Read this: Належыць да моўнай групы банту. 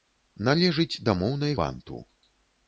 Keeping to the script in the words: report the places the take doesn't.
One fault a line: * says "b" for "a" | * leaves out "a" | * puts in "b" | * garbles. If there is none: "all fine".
* leaves out "групы"